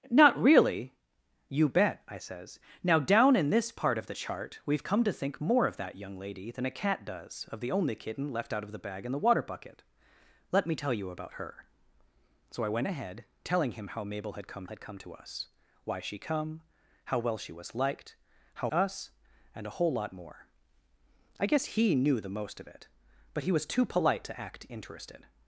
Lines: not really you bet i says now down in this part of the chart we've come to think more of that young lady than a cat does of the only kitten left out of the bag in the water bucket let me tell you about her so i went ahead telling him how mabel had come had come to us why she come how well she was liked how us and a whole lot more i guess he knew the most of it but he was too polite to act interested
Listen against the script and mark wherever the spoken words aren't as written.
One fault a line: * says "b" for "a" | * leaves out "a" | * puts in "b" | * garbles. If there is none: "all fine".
all fine